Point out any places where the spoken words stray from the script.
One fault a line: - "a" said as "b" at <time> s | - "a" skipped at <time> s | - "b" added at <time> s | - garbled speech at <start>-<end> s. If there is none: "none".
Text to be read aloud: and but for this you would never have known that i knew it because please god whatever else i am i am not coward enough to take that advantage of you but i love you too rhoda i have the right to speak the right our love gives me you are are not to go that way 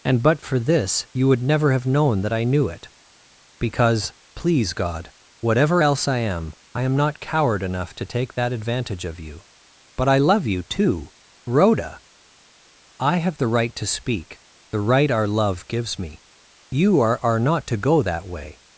none